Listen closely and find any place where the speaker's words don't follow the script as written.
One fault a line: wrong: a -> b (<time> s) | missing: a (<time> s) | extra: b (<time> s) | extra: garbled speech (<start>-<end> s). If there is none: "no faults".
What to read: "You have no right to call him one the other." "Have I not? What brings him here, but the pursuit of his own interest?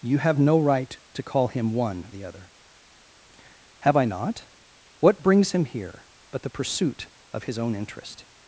no faults